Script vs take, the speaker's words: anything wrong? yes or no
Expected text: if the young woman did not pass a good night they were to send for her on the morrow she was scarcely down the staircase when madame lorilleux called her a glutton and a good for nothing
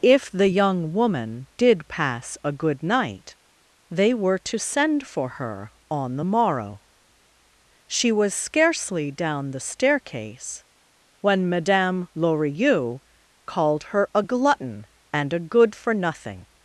yes